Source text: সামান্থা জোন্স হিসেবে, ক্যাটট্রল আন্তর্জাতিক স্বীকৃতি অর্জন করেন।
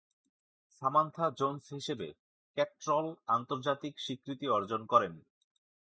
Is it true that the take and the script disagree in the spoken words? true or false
false